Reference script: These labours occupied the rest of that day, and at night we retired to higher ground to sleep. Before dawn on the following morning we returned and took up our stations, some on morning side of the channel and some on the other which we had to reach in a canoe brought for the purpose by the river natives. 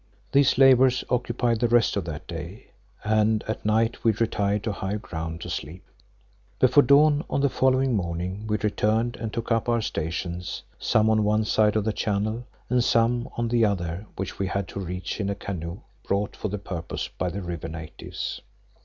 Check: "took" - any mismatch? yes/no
no